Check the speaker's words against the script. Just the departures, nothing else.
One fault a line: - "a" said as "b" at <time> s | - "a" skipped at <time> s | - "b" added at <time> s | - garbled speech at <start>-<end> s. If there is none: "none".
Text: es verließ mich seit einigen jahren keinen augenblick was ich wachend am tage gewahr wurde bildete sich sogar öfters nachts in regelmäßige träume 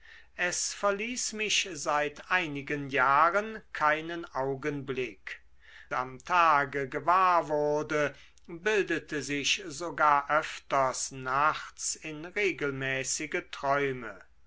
- "was ich wachend" skipped at 5.4 s